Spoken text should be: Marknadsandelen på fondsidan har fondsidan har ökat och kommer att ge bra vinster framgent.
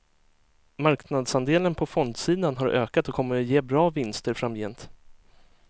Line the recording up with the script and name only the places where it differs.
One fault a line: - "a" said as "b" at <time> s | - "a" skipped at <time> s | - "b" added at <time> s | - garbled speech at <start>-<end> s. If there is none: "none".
- "fondsidan har" skipped at 2.7 s